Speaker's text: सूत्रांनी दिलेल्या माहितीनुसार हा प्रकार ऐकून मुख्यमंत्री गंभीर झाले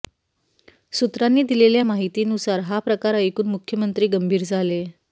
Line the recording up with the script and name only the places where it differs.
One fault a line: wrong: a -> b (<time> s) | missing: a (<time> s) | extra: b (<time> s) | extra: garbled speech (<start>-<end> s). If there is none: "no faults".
no faults